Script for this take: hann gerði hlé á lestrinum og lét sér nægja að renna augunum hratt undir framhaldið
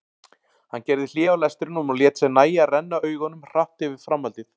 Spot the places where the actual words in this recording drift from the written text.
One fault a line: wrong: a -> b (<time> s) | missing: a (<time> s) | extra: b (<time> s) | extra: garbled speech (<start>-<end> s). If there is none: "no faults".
wrong: undir -> yfir (3.9 s)